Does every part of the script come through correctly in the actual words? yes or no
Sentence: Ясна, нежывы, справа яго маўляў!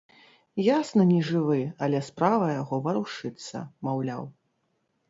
no